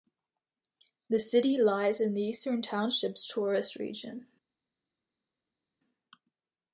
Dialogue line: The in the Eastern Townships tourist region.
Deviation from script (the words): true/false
true